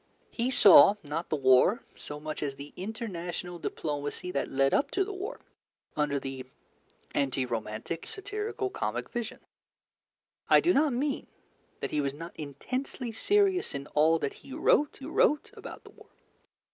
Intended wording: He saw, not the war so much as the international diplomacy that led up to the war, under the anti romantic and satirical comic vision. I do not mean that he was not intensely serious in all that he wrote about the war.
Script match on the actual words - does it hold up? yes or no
no